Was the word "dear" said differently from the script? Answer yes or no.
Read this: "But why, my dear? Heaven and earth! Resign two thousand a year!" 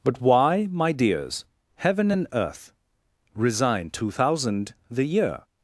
yes